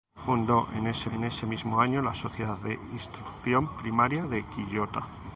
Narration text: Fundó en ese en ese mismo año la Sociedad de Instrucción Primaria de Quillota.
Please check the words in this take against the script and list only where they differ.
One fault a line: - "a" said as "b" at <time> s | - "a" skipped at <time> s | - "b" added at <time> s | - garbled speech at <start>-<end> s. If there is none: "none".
none